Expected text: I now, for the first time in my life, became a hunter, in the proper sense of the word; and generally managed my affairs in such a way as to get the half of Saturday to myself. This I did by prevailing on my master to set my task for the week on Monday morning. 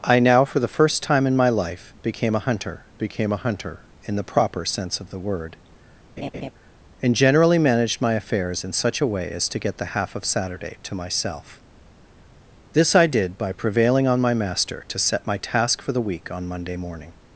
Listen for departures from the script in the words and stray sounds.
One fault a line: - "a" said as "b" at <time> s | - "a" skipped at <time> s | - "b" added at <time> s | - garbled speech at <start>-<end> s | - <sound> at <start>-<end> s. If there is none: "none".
- "became a hunter" added at 3.0 s
- laugh at 6.2-6.5 s